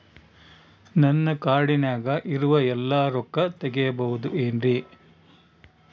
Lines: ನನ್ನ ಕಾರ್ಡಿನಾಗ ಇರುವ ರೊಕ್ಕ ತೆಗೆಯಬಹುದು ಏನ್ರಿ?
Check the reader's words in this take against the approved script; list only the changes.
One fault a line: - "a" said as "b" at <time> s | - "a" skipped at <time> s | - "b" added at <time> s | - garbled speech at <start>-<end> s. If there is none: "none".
- "ಎಲ್ಲಾ" added at 2.7 s